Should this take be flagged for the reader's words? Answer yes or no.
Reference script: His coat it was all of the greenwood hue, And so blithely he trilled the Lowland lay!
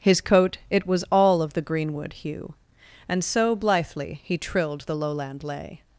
no